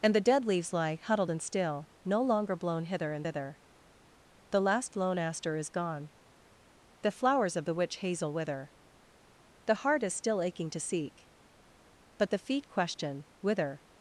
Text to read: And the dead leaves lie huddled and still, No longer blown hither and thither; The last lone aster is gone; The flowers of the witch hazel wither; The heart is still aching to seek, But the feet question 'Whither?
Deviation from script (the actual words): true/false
false